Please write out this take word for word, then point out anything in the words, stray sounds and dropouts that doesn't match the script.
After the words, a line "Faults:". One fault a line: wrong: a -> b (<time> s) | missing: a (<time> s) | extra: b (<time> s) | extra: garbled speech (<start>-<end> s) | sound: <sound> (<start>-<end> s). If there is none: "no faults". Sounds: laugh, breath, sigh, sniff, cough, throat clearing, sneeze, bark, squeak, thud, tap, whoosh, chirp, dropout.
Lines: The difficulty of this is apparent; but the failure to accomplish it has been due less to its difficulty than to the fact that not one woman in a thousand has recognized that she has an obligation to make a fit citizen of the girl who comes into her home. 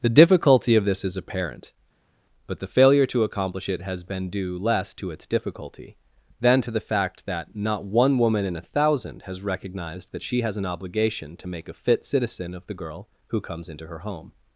The difficulty of this is apparent; but the failure to accomplish it has been due less to its difficulty than to the fact that not one woman in a thousand has recognized that she has an obligation to make a fit citizen of the girl who comes into her home.
Faults:
no faults